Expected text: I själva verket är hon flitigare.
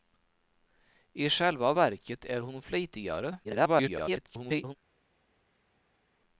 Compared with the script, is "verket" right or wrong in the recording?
right